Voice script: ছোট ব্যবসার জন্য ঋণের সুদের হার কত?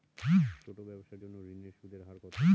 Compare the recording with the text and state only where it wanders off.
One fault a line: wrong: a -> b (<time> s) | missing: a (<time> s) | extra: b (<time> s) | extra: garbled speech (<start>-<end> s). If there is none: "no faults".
no faults